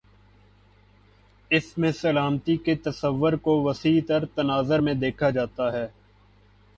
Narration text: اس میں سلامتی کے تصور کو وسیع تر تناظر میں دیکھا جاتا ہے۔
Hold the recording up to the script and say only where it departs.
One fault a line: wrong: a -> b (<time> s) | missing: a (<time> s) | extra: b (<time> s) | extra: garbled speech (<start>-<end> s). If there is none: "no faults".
no faults